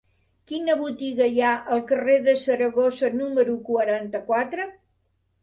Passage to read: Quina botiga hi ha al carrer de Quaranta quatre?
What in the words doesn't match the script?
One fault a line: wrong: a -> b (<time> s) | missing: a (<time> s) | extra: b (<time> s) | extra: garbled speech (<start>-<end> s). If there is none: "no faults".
extra: Saragossa número (2.5 s)